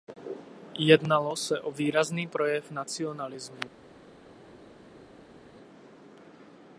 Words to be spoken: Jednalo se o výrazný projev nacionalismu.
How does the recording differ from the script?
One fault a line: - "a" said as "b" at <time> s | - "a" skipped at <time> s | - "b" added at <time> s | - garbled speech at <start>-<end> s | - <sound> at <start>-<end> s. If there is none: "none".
none